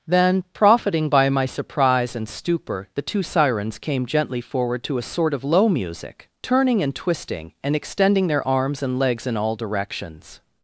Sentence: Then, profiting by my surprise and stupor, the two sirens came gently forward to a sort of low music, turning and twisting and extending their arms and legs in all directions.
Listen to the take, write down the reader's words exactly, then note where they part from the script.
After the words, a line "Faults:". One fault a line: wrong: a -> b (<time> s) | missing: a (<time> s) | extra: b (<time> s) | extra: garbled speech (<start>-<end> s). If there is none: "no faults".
Then, profiting by my surprise and stupor, the two sirens came gently forward to a sort of low music, turning and twisting and extending their arms and legs in all directions.
Faults:
no faults